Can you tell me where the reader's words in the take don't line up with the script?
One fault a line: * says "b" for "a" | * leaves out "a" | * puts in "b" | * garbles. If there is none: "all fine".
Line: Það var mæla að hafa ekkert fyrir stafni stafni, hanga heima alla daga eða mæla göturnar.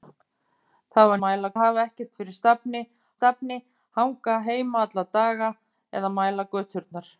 all fine